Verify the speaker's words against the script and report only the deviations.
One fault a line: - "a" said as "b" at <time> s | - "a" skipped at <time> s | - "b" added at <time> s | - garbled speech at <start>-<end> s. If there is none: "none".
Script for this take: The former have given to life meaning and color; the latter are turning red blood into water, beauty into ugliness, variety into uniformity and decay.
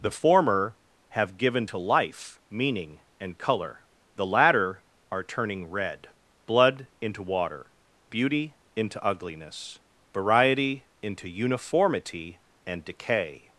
none